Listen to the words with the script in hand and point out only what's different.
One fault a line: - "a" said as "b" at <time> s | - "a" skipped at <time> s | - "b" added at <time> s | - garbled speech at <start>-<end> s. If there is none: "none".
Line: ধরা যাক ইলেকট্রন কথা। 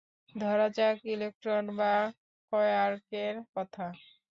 - "বা কোয়ার্কের" added at 1.8 s